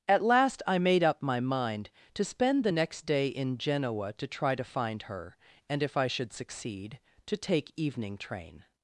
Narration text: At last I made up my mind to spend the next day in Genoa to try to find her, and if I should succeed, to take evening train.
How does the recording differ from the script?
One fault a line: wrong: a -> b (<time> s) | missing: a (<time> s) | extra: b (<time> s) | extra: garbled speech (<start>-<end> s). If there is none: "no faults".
no faults